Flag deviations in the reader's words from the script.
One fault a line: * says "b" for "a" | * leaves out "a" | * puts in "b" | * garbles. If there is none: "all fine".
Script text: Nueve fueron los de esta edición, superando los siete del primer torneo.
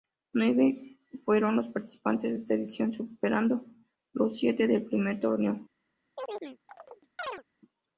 * puts in "participantes"